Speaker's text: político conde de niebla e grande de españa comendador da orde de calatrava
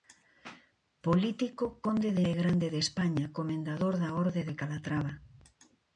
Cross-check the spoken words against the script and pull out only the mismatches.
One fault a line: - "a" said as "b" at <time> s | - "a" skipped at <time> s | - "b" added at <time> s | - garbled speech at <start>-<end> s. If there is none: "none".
- "niebla" skipped at 2.2 s